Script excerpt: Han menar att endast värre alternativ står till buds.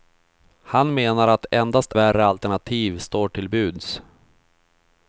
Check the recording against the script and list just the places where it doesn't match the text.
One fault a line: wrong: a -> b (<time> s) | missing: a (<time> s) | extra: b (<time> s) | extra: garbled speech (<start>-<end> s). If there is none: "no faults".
no faults